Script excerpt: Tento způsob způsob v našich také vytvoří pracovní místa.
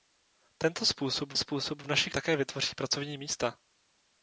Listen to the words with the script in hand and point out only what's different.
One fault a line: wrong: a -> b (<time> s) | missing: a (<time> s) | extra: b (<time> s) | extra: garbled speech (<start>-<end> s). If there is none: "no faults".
no faults